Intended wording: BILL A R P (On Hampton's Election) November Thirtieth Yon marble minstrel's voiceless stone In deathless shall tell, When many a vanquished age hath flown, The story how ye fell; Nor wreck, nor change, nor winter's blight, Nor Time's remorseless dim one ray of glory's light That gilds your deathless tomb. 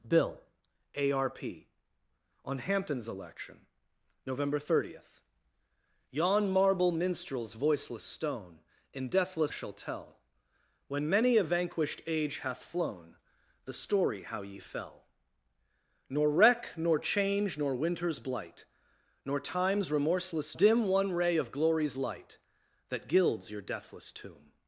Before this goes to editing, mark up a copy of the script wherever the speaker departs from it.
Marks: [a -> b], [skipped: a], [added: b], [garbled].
BILL A R P (On Hampton's Election) November Thirtieth Yon marble minstrel's voiceless stone In deathless shall tell, When many a vanquished age hath flown, The story how ye fell; Nor wreck, nor change, nor winter's blight, Nor Time's remorseless dim one ray of glory's light That gilds your deathless tomb.